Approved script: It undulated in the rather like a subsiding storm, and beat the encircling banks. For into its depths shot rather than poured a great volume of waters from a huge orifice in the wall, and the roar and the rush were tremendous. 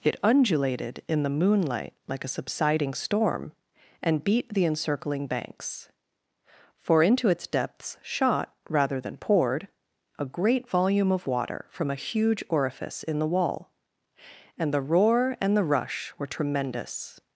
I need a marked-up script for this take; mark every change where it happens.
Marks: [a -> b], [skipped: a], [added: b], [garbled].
It undulated in the [rather -> moonlight] like a subsiding storm, and beat the encircling banks. For into its depths shot rather than poured a great volume of [waters -> water] from a huge orifice in the wall, and the roar and the rush were tremendous.